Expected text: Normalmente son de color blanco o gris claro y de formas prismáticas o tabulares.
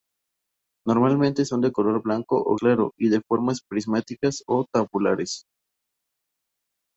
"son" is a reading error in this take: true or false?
false